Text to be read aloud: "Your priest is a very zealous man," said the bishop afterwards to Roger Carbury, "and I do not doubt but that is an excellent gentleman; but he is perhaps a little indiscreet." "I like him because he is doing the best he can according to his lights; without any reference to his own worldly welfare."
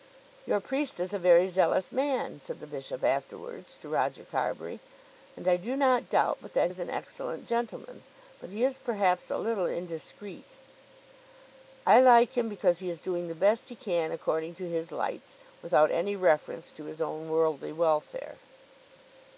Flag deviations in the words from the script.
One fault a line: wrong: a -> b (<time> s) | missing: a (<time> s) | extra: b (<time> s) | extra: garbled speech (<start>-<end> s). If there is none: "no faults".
no faults